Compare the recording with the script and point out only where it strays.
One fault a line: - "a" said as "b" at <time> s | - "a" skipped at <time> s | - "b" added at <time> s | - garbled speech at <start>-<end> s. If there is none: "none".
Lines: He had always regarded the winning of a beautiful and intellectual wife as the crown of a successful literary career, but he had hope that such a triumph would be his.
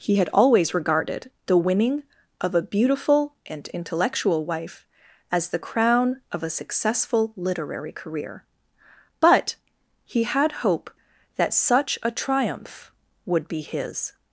none